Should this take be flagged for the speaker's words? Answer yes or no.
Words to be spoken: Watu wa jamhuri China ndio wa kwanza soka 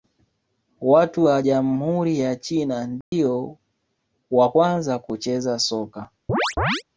yes